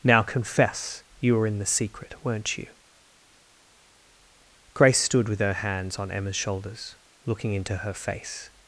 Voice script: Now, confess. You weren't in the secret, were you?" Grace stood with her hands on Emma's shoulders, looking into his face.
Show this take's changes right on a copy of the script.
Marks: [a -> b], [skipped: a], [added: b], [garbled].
Now, confess. You [weren't -> were] in the secret, [were -> weren't] you?" Grace stood with her hands on Emma's shoulders, looking into [his -> her] face.